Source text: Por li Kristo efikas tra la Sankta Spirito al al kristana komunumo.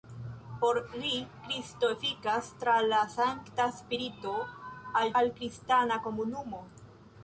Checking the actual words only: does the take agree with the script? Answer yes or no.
yes